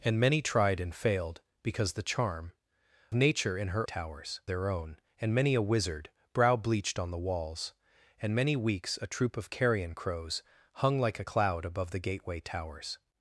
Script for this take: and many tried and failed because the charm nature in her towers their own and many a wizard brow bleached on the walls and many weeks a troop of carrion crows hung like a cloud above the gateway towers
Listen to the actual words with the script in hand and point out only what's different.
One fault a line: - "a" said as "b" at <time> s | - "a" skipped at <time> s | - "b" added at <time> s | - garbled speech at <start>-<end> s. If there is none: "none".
none